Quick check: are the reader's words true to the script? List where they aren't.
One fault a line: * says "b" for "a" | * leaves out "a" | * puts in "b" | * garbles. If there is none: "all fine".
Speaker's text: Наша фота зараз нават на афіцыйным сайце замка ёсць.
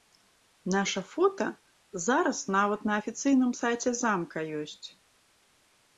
all fine